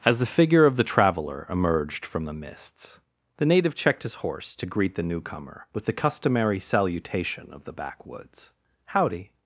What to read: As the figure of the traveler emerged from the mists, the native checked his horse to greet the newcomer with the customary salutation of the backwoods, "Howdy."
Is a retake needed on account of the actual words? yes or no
no